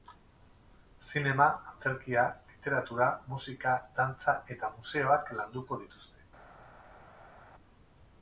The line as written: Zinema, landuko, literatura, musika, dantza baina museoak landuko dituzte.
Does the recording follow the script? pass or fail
fail